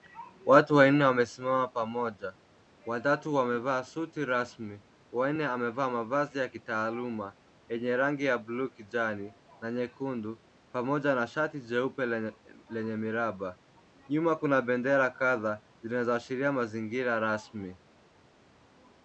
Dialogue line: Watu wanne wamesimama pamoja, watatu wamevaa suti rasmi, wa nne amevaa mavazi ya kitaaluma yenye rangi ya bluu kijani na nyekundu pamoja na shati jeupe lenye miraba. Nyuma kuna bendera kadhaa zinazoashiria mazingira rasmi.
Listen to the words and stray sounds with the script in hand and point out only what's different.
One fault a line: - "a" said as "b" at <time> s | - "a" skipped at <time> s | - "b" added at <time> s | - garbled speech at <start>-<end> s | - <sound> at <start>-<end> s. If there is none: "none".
none